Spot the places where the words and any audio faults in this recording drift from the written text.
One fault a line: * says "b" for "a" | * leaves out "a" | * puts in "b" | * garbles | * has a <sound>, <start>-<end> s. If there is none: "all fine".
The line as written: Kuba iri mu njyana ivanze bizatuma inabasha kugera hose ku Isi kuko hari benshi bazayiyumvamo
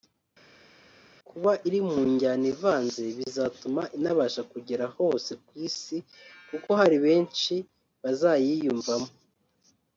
all fine